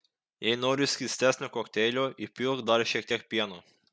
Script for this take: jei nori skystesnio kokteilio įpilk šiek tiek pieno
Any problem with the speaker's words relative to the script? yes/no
yes